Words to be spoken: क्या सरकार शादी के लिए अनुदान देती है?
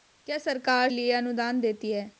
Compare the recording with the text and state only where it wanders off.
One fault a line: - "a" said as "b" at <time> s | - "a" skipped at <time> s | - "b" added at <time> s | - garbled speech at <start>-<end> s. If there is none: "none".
- "शादी के" skipped at 0.9 s